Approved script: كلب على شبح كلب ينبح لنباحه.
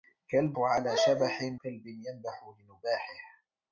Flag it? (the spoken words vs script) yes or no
no